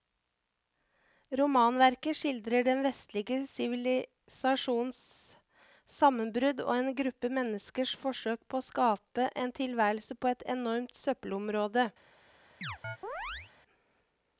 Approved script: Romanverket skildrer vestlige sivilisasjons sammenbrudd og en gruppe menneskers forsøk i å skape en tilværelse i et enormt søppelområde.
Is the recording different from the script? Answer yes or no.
yes